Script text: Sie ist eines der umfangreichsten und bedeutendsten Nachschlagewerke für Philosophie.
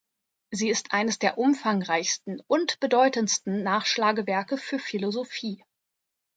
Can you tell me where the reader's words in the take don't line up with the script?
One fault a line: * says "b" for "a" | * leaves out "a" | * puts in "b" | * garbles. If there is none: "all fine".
all fine